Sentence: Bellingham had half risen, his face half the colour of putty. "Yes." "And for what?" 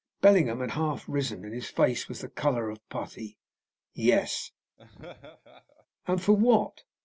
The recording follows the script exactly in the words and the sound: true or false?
false